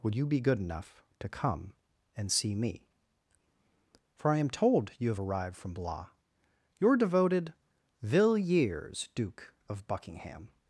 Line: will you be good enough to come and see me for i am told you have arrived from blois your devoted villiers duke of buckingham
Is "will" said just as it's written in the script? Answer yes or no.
no